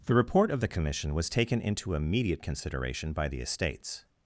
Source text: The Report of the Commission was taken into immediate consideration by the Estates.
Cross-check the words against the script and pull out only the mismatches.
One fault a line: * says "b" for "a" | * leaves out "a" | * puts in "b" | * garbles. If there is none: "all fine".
all fine